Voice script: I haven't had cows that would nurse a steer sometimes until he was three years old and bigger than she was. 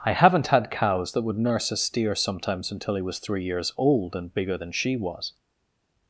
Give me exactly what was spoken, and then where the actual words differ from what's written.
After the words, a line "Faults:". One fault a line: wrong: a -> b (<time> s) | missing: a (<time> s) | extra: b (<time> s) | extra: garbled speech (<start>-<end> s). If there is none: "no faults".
I haven't had cows that would nurse a steer sometimes until he was three years old and bigger than she was.
Faults:
no faults